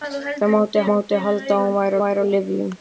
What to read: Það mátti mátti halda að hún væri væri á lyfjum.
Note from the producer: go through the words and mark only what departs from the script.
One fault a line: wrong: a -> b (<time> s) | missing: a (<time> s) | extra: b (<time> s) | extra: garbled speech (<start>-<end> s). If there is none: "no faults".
no faults